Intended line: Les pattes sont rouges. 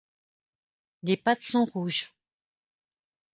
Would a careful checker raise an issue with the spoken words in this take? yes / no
no